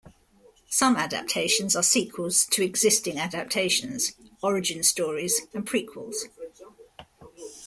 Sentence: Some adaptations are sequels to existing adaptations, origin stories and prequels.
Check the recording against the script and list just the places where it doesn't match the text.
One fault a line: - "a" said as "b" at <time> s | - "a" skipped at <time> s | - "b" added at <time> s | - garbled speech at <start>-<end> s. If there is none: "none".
none